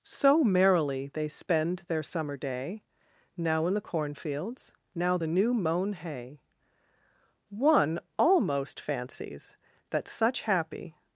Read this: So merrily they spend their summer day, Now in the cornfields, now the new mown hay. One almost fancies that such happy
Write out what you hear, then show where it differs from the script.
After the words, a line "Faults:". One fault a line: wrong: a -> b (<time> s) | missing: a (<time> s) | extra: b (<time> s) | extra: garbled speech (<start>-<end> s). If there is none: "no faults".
So merrily they spend their summer day, Now in the cornfields, now the new mown hay. One almost fancies that such happy
Faults:
no faults